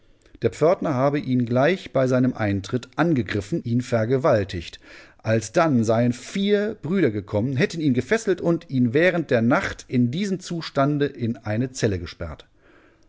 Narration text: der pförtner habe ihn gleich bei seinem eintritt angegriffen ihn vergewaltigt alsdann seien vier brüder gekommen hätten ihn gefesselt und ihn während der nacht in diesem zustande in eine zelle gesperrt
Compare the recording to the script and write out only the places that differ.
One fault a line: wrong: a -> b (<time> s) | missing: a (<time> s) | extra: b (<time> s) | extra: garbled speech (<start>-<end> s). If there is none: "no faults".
no faults